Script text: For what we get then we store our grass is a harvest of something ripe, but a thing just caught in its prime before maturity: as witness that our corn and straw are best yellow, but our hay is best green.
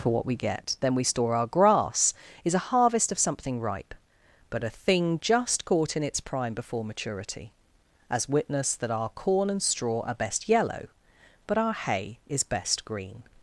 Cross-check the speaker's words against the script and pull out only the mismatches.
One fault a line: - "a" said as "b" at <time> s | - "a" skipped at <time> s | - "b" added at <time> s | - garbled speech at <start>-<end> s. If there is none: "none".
none